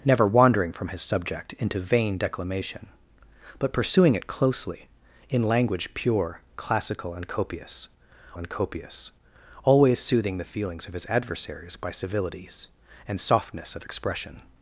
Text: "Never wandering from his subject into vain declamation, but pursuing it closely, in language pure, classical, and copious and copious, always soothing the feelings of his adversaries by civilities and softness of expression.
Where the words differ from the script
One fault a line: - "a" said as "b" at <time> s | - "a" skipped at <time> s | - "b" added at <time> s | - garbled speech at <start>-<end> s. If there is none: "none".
none